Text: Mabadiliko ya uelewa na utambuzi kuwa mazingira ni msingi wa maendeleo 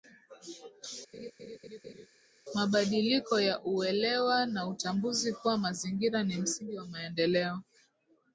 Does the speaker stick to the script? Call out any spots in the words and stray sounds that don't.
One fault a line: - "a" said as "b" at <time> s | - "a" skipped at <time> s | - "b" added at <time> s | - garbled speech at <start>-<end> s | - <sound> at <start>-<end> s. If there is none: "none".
- laugh at 1.1-2.1 s